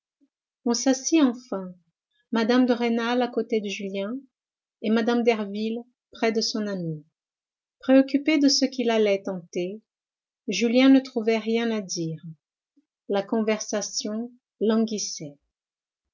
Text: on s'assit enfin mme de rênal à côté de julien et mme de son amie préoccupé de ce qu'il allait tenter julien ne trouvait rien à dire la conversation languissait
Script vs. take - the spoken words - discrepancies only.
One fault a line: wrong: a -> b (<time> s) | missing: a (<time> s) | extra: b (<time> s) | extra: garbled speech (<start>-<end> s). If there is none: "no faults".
extra: derville près (5.2 s)